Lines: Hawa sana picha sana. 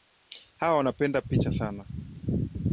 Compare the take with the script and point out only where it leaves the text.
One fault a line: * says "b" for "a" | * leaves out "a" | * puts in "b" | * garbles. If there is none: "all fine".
* says "wanapenda" for "sana"